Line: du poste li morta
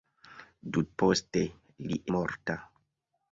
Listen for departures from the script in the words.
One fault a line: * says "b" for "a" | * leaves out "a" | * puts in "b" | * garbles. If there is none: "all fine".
all fine